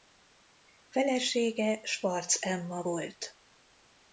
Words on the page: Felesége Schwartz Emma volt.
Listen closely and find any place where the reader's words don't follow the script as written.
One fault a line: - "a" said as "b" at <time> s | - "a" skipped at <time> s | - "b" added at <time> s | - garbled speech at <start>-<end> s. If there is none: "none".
none